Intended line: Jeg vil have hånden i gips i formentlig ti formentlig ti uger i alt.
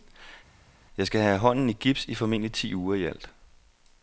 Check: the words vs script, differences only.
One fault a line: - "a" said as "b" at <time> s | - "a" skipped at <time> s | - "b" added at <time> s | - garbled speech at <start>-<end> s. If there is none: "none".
- "vil" said as "skal" at 1.1 s
- "formentlig ti" skipped at 2.7 s